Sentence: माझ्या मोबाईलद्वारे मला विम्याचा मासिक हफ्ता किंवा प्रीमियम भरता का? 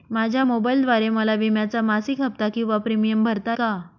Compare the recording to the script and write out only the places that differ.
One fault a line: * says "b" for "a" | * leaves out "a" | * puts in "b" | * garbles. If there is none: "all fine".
all fine